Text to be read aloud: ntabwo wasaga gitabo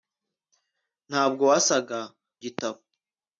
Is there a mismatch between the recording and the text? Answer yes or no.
no